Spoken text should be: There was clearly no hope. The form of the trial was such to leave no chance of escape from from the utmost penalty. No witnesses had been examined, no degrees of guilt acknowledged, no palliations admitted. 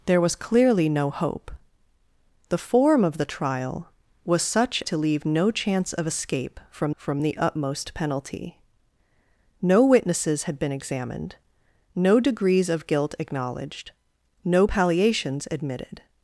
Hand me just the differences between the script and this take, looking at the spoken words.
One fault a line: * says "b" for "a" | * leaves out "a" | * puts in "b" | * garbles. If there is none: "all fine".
all fine